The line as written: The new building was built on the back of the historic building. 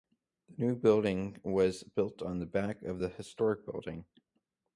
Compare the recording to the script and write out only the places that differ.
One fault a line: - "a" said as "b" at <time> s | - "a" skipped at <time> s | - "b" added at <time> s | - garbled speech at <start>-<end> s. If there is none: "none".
none